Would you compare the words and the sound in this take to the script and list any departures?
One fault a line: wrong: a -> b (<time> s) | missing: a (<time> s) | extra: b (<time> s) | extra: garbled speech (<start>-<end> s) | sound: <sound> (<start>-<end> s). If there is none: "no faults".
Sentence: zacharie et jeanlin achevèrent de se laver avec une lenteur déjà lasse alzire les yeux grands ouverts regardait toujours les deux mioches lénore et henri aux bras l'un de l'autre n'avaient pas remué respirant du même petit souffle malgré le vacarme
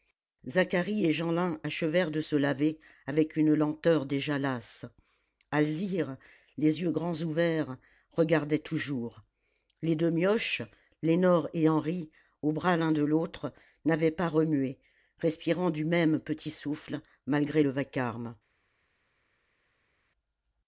no faults